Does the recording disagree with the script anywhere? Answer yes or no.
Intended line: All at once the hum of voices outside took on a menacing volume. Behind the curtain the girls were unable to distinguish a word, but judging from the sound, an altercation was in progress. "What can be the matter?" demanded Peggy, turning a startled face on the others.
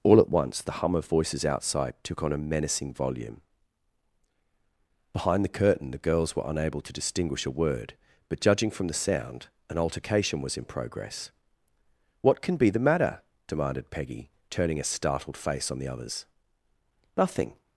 yes